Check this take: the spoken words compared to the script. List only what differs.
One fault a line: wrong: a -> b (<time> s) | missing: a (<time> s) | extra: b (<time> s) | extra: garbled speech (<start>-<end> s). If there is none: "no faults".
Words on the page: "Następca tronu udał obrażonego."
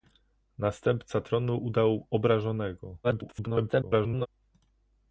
extra: garbled speech (3.0-4.3 s)